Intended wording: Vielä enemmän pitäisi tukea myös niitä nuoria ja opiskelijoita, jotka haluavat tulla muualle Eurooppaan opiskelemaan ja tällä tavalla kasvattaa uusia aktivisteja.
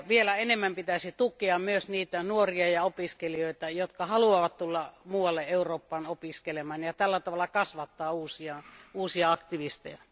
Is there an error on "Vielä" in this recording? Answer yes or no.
no